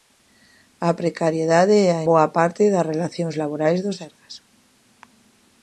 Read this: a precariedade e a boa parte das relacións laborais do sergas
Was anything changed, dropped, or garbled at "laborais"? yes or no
no